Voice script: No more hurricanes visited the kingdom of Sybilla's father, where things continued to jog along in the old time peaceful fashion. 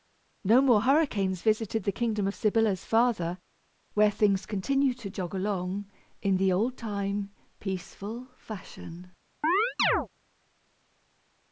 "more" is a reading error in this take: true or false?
false